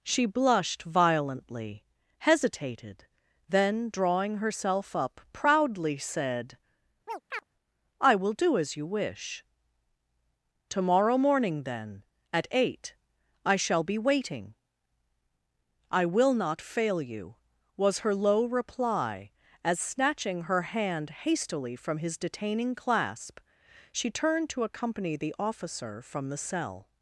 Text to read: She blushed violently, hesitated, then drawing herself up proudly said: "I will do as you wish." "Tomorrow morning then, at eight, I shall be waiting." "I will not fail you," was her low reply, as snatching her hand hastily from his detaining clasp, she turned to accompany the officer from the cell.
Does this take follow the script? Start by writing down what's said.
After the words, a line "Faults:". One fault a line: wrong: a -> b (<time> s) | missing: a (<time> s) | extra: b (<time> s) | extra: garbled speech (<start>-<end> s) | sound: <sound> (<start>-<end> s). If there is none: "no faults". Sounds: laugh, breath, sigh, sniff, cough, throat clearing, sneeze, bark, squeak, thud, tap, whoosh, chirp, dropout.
She blushed violently, hesitated, then drawing herself up proudly said: "I will do as you wish." "Tomorrow morning then, at eight, I shall be waiting." "I will not fail you," was her low reply, as snatching her hand hastily from his detaining clasp, she turned to accompany the officer from the cell.
Faults:
sound: chirp (7.1-7.4 s)